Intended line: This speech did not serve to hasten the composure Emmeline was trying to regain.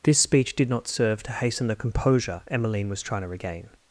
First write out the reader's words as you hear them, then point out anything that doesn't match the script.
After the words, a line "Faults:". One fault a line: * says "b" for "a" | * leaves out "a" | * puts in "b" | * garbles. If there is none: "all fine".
This speech did not serve to hasten the composure Emmeline was trying to regain.
Faults:
all fine